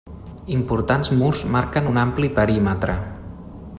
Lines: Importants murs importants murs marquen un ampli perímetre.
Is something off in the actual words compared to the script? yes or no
yes